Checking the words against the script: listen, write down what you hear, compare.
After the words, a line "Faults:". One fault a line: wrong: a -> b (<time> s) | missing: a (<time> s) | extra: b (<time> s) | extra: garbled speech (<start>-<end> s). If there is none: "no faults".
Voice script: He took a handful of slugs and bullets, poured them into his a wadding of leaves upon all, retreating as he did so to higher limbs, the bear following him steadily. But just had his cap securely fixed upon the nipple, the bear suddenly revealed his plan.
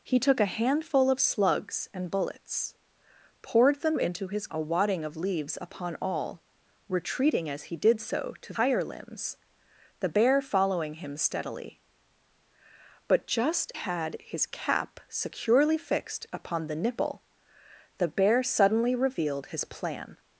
He took a handful of slugs and bullets, poured them into his a wadding of leaves upon all, retreating as he did so to higher limbs, the bear following him steadily. But just had his cap securely fixed upon the nipple, the bear suddenly revealed his plan.
Faults:
no faults